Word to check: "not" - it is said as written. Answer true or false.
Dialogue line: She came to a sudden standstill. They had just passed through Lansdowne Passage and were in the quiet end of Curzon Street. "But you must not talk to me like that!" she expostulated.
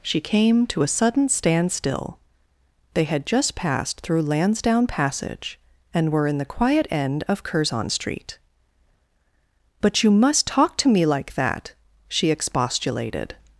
false